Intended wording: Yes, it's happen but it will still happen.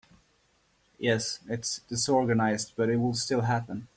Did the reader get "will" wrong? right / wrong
right